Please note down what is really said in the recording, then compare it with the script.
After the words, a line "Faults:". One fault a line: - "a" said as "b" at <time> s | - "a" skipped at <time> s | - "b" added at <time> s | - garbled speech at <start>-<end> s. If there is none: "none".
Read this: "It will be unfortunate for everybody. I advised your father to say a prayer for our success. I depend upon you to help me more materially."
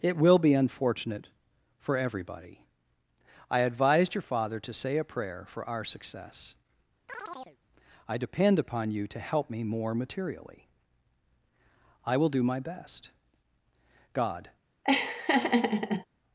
"It will be unfortunate for everybody. I advised your father to say a prayer for our success. I depend upon you to help me more materially." "I will do my best. God
Faults:
- "I will do my best God" added at 12.0 s